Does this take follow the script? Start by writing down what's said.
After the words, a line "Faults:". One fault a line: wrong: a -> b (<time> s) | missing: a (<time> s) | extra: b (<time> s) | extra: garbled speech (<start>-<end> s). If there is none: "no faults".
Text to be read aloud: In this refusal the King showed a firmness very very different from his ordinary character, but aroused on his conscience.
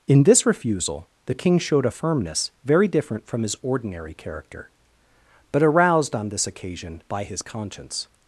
In this refusal the King showed a firmness very different from his ordinary character, but aroused on this occasion by his conscience.
Faults:
missing: very (2.9 s)
extra: this occasion by (6.3 s)